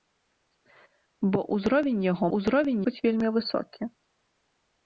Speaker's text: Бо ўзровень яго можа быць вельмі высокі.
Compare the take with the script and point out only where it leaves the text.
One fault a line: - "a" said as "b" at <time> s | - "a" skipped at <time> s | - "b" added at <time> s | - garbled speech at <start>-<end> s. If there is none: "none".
- "можа" said as "ўзровень" at 2.4 s